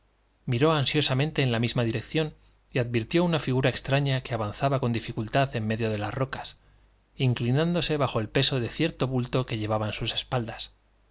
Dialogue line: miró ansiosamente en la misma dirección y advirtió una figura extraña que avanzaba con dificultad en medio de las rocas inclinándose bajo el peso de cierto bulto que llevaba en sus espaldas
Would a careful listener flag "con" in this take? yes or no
no